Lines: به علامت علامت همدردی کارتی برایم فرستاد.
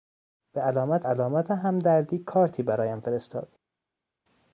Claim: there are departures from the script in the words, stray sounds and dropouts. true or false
false